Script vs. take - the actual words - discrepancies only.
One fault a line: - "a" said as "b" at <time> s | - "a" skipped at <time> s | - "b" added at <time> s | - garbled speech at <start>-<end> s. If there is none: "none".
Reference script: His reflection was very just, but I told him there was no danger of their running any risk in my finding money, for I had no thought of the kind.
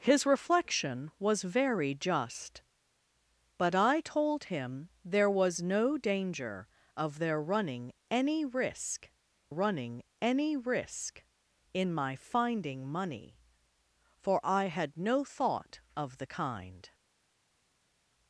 - "running any risk" added at 9.5 s